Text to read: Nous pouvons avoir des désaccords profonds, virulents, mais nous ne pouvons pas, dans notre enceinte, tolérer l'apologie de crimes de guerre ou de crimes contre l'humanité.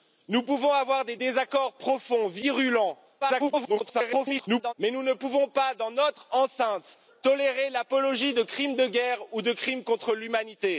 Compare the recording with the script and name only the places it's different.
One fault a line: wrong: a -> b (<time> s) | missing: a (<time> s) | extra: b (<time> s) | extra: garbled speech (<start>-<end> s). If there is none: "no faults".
extra: garbled speech (3.2-4.7 s)